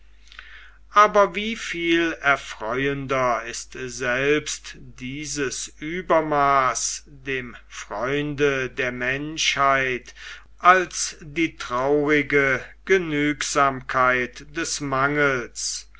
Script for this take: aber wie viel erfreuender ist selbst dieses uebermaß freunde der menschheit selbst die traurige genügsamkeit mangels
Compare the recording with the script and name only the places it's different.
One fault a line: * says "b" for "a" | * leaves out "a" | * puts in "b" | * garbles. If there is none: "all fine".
* puts in "dem"
* says "als" for "selbst"
* puts in "des"